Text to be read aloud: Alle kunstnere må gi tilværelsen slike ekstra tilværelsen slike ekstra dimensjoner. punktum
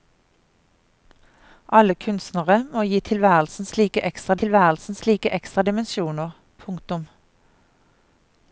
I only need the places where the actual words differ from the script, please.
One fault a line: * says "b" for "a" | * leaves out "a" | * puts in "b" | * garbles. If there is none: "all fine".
all fine